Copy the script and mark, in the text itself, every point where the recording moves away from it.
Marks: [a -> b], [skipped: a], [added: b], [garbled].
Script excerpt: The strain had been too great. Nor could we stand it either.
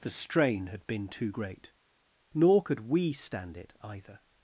The strain had been too great. Nor could we stand it either.